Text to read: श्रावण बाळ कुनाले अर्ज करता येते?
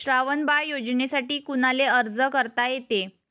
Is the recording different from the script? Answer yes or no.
yes